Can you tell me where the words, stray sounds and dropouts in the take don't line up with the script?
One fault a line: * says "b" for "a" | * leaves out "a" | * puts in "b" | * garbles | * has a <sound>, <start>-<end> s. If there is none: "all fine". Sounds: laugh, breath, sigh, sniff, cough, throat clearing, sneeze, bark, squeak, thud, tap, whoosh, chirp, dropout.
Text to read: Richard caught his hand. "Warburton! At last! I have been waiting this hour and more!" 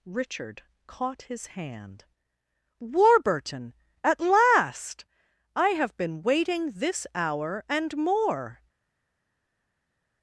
all fine